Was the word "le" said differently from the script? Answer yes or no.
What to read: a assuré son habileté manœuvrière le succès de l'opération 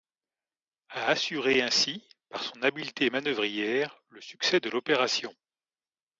no